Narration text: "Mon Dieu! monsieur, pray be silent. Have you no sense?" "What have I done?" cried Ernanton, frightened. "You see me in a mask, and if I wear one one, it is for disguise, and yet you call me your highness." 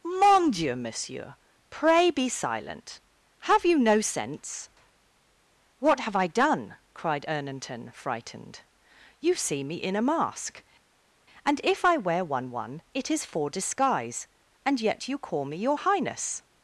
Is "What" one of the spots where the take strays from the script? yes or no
no